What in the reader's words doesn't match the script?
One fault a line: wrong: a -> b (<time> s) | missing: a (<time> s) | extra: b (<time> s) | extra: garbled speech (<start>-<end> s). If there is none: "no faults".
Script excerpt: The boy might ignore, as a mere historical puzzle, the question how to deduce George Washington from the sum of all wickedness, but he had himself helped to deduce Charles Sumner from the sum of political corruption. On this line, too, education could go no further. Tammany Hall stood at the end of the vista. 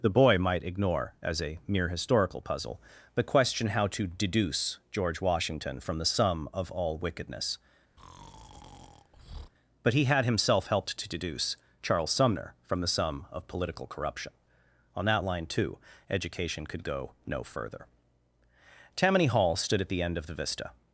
wrong: this -> that (15.1 s)